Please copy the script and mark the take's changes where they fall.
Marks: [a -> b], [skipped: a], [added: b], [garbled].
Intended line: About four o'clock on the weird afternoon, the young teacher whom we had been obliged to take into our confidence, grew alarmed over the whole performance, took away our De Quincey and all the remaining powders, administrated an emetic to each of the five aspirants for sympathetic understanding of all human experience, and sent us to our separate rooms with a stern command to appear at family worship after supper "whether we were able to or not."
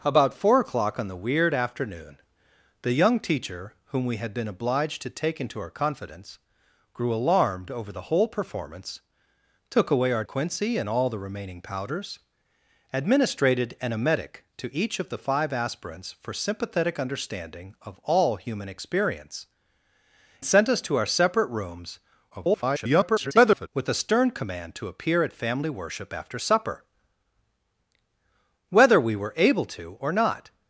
About four o'clock on the weird afternoon, the young teacher whom we had been obliged to take into our confidence, grew alarmed over the whole performance, took away our [skipped: De] Quincey and all the remaining powders, administrated an emetic to each of the five aspirants for sympathetic understanding of all human experience, [skipped: and] sent us to our separate rooms [garbled] with a stern command to appear at family worship after supper "whether we were able to or not."